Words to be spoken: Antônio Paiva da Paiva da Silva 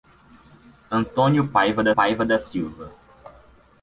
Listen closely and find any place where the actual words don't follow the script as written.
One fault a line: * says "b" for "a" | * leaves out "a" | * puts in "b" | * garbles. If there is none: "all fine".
all fine